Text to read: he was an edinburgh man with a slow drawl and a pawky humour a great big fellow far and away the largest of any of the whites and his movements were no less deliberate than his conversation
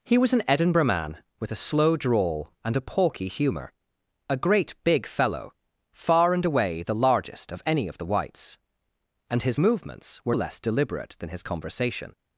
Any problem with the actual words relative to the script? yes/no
yes